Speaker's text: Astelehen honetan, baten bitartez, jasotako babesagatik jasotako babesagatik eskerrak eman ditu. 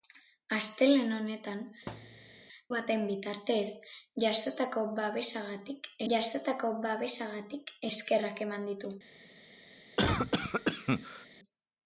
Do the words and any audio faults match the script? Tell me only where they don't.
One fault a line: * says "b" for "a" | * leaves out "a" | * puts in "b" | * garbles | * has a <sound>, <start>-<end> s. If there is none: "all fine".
* has a thud, 1.9-2.4 s
* has a cough, 10.0-11.3 s